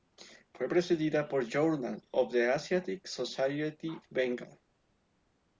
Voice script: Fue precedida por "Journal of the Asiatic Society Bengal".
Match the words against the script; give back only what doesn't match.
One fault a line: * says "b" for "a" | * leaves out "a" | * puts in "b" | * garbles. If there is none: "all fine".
all fine